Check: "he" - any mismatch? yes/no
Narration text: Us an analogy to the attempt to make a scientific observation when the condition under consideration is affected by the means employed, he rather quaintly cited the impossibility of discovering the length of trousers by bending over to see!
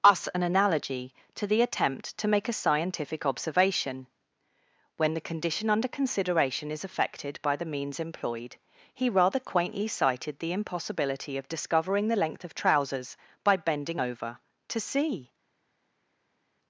no